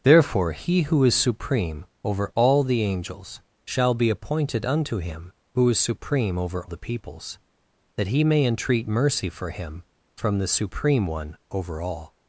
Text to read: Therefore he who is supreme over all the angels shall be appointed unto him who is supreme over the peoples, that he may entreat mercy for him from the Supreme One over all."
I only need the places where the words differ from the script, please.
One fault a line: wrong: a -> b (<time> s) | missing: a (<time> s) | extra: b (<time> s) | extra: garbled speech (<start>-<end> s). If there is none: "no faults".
no faults